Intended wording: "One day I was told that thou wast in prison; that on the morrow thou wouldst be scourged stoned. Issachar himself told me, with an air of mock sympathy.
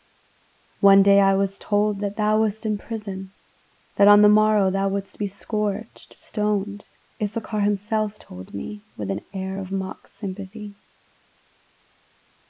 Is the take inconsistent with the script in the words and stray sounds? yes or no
no